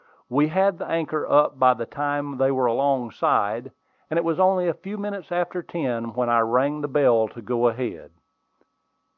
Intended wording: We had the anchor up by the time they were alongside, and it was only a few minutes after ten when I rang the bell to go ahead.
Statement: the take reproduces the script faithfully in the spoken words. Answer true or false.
true